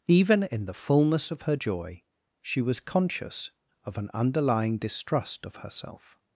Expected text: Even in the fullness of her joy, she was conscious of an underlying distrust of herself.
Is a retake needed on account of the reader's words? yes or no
no